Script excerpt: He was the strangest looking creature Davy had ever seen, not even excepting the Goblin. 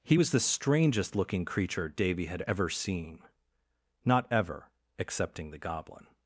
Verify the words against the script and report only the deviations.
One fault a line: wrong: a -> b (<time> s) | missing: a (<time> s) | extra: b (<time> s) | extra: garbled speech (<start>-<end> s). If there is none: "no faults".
wrong: even -> ever (4.3 s)